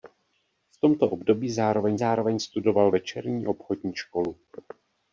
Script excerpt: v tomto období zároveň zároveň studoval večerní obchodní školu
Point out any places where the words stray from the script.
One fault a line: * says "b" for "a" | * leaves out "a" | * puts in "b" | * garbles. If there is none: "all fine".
all fine